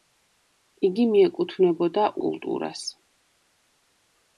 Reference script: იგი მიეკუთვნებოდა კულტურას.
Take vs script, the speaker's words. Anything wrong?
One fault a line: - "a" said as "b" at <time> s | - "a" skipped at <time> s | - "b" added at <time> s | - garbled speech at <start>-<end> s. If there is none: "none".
none